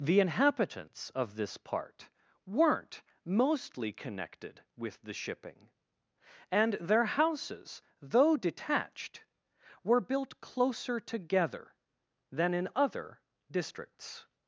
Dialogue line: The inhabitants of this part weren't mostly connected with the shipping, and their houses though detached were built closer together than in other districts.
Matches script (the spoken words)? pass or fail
pass